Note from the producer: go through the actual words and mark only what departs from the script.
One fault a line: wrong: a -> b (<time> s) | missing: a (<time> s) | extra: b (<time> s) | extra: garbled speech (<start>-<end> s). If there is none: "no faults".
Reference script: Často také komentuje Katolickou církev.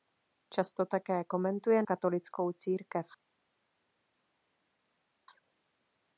no faults